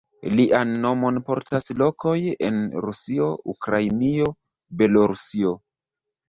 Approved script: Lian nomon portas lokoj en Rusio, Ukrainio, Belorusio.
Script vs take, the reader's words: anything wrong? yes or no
no